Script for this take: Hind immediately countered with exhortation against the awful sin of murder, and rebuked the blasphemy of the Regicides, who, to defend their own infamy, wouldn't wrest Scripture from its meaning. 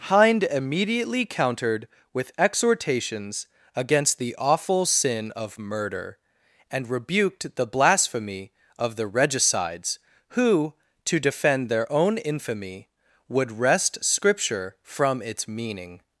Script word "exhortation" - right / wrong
wrong